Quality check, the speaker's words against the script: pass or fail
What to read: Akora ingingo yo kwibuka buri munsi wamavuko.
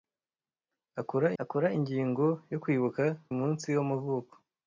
fail